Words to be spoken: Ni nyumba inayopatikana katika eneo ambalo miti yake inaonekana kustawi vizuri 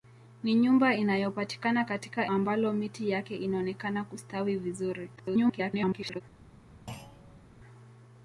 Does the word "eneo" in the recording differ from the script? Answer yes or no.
yes